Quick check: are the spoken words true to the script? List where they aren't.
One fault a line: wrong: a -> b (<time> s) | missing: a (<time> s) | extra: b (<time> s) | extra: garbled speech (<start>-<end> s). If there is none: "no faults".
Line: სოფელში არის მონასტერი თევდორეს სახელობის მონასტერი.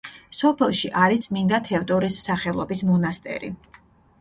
wrong: მონასტერი -> წმინდა (1.2 s)